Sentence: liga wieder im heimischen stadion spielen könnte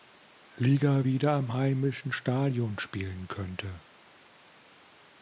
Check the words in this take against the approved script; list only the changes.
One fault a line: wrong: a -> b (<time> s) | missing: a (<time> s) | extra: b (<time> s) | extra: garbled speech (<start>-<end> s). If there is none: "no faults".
no faults